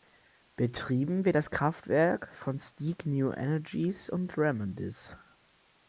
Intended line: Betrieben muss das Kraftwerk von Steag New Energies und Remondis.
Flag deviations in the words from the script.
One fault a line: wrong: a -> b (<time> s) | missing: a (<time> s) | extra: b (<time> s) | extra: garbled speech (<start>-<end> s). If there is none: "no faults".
wrong: muss -> wird (1.2 s)